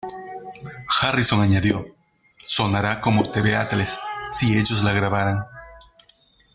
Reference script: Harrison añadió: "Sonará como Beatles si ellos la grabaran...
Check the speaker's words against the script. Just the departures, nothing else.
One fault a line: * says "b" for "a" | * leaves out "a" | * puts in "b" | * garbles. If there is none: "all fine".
* puts in "The"